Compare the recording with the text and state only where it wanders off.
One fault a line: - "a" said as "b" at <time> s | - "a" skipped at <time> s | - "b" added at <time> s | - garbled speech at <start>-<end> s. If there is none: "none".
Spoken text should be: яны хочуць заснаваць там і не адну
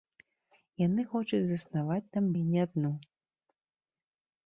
none